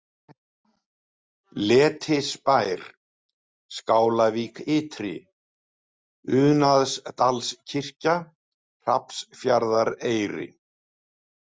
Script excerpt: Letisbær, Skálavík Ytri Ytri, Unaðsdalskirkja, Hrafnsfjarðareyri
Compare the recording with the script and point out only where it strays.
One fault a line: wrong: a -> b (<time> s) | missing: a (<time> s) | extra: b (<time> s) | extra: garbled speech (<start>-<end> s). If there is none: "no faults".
missing: Ytri (5.1 s)